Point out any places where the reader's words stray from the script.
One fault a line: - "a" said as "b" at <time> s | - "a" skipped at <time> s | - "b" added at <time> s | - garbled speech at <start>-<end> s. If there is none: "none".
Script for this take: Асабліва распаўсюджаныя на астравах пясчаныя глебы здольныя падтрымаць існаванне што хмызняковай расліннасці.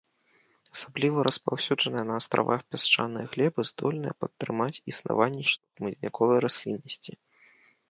none